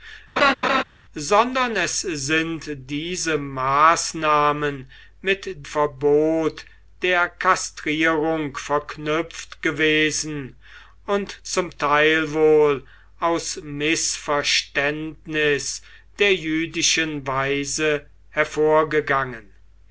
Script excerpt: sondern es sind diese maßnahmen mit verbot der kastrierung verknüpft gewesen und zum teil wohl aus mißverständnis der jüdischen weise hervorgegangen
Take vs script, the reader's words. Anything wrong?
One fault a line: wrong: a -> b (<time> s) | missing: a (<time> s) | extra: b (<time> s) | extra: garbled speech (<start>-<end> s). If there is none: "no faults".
no faults